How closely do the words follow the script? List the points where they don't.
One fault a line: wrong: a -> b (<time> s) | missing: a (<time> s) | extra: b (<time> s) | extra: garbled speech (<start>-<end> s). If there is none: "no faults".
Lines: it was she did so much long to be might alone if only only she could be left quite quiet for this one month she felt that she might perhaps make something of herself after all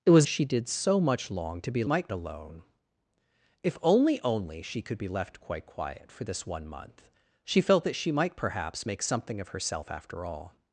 no faults